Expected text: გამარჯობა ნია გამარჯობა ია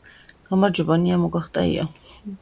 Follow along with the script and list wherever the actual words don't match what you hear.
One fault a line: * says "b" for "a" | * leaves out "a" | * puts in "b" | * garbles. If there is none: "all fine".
* says "მოგახტა" for "გამარჯობა"